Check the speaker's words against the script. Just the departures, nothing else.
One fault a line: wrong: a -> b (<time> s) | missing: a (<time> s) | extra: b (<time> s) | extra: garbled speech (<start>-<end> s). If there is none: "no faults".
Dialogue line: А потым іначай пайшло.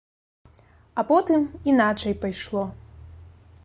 no faults